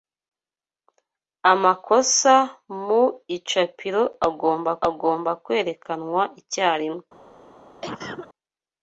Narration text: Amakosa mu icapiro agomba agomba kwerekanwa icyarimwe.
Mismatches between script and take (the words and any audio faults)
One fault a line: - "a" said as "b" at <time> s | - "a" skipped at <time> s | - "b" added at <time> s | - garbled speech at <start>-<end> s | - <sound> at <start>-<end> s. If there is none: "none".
- cough at 7.8-8.3 s